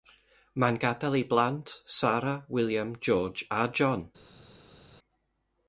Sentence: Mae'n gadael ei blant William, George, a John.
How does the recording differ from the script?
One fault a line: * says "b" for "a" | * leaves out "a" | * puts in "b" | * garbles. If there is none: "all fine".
* puts in "Sarah"